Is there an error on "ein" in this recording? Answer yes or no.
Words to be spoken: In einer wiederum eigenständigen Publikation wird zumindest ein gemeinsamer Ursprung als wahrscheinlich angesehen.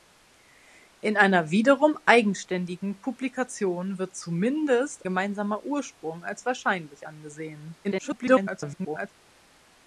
yes